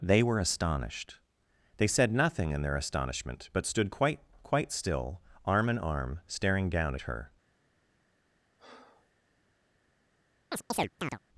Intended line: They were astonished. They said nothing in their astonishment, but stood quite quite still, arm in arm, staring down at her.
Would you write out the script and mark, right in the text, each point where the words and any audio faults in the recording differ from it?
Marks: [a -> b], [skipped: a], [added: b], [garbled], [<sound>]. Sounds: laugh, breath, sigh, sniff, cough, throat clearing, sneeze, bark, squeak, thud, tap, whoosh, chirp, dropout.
They were astonished. They said nothing in their astonishment, but stood quite quite still, arm in arm, staring down at her. [breath] [chirp]